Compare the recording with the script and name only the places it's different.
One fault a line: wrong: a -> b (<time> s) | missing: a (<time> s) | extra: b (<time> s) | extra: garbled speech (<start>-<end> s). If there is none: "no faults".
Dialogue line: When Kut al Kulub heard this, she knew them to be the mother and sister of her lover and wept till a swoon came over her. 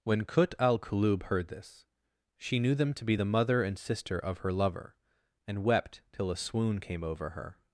no faults